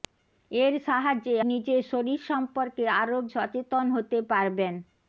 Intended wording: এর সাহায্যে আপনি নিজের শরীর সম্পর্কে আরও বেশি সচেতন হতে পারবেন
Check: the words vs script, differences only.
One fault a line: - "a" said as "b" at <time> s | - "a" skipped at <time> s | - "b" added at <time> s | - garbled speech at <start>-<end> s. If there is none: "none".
- "আপনি" skipped at 1.4 s
- "বেশি" skipped at 3.2 s